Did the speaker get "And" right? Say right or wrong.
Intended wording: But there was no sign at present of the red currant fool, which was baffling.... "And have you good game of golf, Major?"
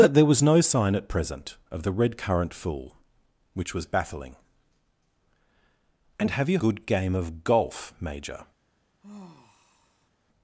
right